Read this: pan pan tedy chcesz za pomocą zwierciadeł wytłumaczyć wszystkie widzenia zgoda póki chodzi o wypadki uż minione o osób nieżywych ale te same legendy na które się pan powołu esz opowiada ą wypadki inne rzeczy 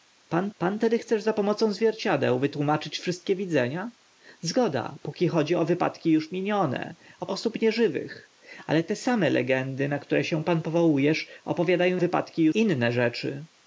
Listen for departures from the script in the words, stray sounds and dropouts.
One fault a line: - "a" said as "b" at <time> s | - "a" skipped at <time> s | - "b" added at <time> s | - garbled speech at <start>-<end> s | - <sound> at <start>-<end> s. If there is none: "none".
none